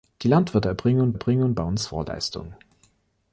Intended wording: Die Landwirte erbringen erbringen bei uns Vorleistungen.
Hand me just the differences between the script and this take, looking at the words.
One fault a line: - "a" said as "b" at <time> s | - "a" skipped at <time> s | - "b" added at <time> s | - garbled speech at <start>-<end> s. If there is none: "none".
none